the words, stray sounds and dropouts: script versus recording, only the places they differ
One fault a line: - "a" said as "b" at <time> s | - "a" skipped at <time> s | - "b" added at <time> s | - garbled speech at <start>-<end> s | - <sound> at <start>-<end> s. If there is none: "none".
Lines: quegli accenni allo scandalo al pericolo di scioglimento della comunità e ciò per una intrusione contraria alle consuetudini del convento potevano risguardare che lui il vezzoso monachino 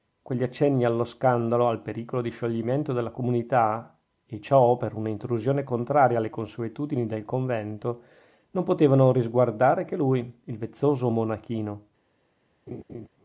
- "non" added at 8.5 s
- laugh at 12.7-13.1 s